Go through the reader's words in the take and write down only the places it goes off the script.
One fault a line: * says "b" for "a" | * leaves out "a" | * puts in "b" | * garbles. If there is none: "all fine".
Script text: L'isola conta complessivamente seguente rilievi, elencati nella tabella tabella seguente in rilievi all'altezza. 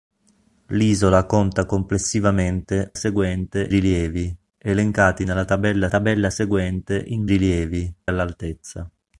all fine